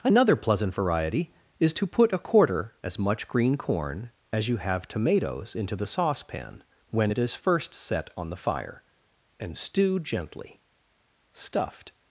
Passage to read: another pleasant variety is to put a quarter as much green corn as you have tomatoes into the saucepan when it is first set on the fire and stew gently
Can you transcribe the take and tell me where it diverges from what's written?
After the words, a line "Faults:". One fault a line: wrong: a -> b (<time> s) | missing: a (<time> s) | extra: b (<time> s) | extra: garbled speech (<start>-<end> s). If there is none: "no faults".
another pleasant variety is to put a quarter as much green corn as you have tomatoes into the saucepan when it is first set on the fire and stew gently stuffed
Faults:
extra: stuffed (11.3 s)